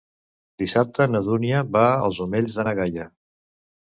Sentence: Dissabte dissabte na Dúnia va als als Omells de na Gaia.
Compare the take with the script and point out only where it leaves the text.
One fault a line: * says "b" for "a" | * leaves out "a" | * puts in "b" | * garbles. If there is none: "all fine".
* leaves out "dissabte"
* leaves out "als"